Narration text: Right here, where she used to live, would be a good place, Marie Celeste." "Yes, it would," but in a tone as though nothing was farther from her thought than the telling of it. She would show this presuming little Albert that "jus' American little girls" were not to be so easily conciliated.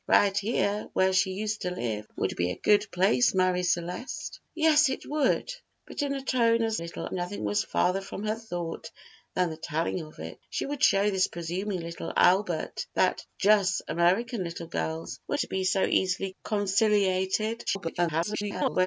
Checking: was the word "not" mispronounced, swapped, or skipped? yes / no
yes